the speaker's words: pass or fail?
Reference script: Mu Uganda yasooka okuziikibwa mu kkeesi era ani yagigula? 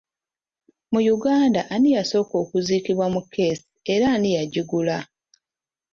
fail